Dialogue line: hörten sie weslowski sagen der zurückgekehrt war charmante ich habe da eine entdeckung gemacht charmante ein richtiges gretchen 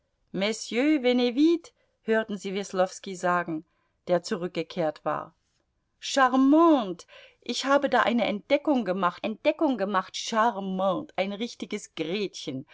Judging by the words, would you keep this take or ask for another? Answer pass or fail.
fail